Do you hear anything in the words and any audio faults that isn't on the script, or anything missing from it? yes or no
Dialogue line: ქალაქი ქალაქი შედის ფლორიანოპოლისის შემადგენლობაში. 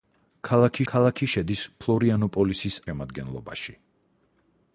no